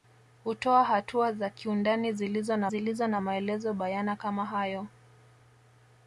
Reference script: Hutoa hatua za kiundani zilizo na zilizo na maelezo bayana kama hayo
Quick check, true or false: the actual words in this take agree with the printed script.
true